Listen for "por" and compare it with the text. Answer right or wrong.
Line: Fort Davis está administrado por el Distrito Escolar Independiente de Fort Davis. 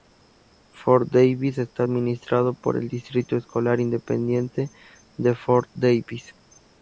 right